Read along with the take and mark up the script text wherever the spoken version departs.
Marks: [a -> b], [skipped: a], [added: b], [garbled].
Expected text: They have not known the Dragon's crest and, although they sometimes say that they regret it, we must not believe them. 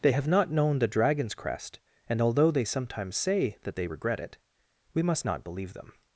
They have not known the Dragon's crest and, although they sometimes say that they regret it, we must not believe them.